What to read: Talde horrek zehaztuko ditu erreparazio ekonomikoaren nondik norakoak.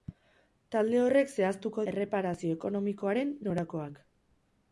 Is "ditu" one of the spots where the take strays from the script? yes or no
yes